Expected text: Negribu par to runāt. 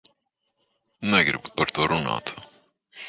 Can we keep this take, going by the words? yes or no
yes